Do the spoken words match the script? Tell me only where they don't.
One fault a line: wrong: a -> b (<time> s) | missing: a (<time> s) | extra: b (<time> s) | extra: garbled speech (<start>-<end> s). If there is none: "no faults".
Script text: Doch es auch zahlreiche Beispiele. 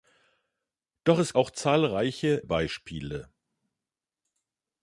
no faults